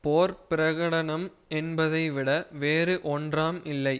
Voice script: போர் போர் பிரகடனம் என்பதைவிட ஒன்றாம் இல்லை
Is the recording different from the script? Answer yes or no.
yes